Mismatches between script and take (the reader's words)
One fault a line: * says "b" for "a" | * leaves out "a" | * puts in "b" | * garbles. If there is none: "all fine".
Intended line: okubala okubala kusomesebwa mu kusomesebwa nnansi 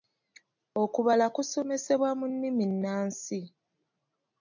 * leaves out "okubala"
* says "nnimi" for "kusomesebwa"